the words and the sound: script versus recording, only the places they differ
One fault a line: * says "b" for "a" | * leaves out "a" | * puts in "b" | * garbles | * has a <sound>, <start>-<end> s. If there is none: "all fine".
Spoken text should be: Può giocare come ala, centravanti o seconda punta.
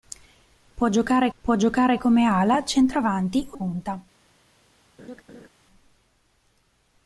* puts in "può giocare"
* leaves out "seconda"
* has a laugh, 5.0-5.5 s